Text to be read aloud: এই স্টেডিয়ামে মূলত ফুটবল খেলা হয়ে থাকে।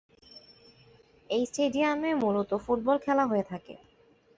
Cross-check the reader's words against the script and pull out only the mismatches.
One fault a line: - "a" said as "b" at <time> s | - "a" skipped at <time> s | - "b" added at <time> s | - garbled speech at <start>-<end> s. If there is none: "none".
none